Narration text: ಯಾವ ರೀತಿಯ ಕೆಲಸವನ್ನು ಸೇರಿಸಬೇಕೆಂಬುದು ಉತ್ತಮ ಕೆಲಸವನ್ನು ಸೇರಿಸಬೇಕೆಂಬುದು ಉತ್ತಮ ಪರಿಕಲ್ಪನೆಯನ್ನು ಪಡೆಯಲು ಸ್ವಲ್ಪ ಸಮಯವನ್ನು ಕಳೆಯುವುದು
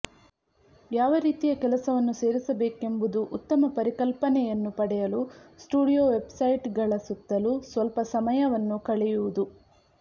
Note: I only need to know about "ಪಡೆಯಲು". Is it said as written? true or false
false